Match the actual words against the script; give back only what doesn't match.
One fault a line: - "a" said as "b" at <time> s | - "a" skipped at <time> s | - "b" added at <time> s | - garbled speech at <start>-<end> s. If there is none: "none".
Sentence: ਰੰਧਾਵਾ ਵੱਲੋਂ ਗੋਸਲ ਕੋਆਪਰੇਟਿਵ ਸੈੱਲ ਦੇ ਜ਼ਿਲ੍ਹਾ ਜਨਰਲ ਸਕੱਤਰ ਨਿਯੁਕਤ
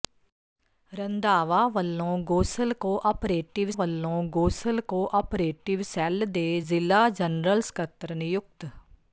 - "ਵੱਲੋਂ ਗੋਸਲ ਕੋਆਪਰੇਟਿਵ" added at 3.7 s